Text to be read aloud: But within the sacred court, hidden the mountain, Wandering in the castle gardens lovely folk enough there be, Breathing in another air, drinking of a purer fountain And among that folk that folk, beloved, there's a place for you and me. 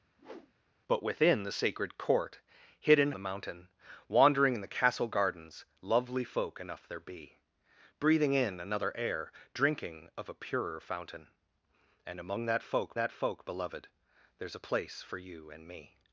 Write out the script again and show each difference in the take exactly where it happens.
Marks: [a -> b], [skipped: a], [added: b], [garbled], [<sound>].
[whoosh] But within the sacred court, hidden the mountain, Wandering in the castle gardens lovely folk enough there be, Breathing in another air, drinking of a purer fountain And among that folk that folk, beloved, there's a place for you and me.